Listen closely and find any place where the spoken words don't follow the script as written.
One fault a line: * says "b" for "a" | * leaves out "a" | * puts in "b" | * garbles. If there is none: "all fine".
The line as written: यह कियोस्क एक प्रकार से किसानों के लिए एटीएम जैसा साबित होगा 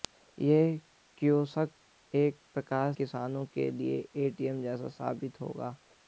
* leaves out "से"